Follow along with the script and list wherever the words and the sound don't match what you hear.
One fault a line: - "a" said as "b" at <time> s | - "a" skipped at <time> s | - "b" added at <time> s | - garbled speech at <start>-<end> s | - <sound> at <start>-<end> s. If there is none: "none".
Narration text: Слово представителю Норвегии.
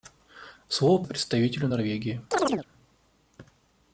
- chirp at 2.3-2.7 s